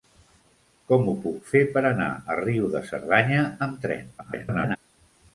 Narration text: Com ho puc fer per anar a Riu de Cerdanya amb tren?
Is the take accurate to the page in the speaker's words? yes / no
no